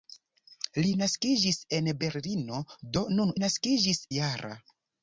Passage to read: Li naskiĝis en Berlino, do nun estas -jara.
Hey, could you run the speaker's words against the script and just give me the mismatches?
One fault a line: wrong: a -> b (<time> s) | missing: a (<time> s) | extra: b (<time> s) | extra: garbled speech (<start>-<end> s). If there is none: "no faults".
wrong: estas -> naskiĝis (3.4 s)